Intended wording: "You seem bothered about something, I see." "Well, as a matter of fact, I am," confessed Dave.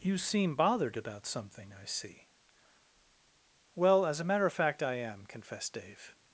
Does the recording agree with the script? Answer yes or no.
yes